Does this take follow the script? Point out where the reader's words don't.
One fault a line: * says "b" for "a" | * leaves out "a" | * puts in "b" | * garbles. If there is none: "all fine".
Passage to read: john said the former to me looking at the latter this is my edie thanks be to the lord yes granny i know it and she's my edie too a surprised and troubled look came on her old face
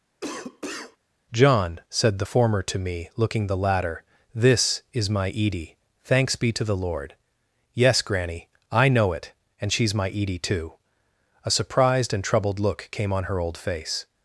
* leaves out "at"